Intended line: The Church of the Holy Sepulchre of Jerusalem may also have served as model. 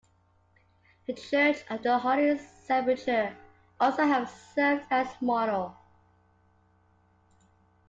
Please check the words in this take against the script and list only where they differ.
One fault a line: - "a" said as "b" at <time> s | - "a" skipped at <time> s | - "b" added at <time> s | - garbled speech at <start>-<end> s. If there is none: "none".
- "of Jerusalem may" skipped at 3.4 s